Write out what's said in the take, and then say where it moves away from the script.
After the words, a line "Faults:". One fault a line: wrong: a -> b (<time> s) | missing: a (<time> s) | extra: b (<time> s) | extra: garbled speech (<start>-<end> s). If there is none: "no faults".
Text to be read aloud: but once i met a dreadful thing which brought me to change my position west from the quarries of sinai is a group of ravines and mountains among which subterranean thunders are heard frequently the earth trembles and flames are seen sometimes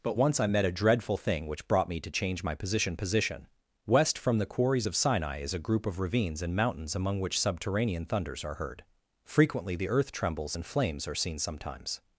but once i met a dreadful thing which brought me to change my position position west from the quarries of sinai is a group of ravines and mountains among which subterranean thunders are heard frequently the earth trembles and flames are seen sometimes
Faults:
extra: position (3.0 s)